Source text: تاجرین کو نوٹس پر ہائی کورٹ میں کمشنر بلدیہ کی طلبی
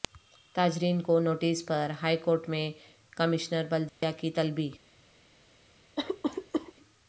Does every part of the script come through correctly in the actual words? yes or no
yes